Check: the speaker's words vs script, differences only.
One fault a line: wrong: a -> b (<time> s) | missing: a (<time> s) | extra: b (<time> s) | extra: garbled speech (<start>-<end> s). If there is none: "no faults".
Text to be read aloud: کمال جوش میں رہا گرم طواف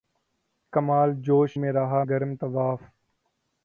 no faults